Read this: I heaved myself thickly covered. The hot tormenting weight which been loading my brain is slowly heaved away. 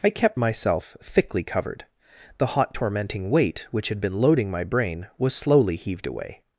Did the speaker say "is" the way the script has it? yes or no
no